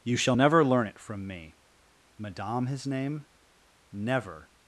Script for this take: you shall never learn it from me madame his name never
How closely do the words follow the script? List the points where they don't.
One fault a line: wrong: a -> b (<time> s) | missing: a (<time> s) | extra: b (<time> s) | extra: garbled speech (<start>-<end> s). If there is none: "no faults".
no faults